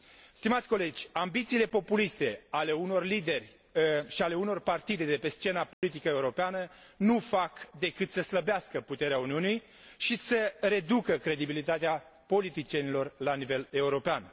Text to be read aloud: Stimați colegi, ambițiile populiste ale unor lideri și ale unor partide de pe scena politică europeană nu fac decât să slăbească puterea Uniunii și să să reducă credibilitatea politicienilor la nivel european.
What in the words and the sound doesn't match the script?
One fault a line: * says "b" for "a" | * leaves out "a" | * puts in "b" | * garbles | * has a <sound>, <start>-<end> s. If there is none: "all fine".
* has a dropout, 5.7-5.8 s
* leaves out "să"